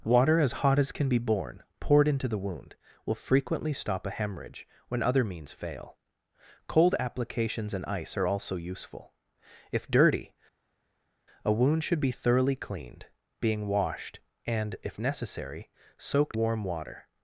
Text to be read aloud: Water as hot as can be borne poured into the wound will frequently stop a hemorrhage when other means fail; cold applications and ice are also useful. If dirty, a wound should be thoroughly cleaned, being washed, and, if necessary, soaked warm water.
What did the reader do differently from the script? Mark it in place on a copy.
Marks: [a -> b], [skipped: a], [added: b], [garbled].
Water as hot as can be borne poured into the wound will frequently stop a hemorrhage when other means fail; cold applications and ice are also useful. If dirty, a wound should be thoroughly cleaned, being washed, and, if necessary, soaked warm water.